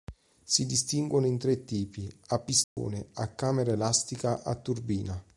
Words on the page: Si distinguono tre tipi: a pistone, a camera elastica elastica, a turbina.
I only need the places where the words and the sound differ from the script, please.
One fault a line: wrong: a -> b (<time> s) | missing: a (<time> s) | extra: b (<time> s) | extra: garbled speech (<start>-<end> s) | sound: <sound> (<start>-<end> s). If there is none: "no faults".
extra: in (1.3 s)
sound: dropout (2.6-2.8 s)
missing: elastica (4.4 s)